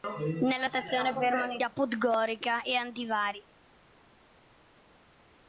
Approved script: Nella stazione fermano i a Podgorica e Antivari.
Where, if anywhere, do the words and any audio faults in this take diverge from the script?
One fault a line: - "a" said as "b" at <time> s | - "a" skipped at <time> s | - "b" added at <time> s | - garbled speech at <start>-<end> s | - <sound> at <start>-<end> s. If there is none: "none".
none